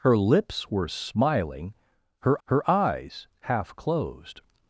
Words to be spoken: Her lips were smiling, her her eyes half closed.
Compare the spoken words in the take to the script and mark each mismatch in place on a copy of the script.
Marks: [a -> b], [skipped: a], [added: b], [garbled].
Her lips were smiling, her her eyes half closed.